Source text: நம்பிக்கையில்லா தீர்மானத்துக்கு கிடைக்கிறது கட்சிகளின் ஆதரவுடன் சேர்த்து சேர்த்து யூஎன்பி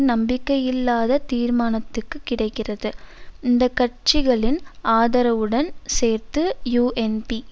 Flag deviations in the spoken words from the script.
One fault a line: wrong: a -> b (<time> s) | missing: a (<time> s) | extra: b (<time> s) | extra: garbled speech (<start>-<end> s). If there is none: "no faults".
extra: இந்த (3.4 s)
missing: சேர்த்து (6.4 s)